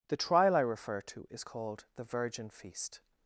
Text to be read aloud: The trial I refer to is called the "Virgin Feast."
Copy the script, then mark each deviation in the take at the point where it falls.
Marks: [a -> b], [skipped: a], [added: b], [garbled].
The trial I refer to is called the "Virgin Feast."